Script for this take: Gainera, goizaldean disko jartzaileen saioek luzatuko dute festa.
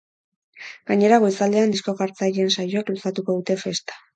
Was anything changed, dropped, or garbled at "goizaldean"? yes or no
no